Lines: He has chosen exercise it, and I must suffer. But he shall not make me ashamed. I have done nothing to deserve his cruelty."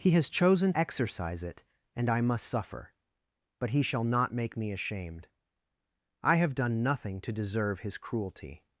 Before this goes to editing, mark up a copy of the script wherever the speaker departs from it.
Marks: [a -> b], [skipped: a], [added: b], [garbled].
He has chosen exercise it, and I must suffer. But he shall not make me ashamed. I have done nothing to deserve his cruelty."